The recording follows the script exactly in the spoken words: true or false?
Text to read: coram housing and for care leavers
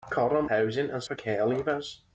true